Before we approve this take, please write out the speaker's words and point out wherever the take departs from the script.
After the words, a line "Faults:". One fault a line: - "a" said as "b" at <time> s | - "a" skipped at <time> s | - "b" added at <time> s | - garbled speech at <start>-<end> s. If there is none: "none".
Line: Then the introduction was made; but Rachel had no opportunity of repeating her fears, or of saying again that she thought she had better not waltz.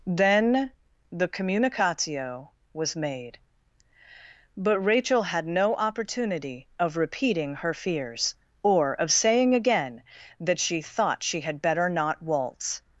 Then the communicatio was made; but Rachel had no opportunity of repeating her fears, or of saying again that she thought she had better not waltz.
Faults:
- "introduction" said as "communicatio" at 1.3 s